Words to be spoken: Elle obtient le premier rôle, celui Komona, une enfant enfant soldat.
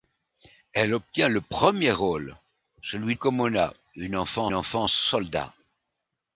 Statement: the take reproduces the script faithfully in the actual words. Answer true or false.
true